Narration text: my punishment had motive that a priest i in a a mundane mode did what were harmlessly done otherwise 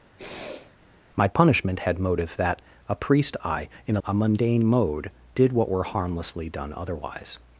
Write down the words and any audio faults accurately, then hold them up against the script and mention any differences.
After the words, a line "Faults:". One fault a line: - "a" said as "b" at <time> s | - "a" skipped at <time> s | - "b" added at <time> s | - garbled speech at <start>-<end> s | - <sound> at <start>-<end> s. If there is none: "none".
my punishment had motive that a priest i in a a mundane mode did what were harmlessly done otherwise
Faults:
- sniff at 0.2-0.8 s